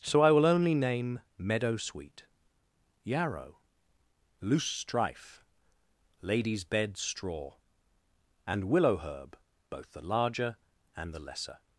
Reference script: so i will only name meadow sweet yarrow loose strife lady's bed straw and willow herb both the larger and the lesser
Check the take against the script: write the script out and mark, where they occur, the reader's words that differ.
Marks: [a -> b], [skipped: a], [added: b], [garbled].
so i will only name meadow sweet yarrow loose strife lady's bed straw and willow herb both the larger and the lesser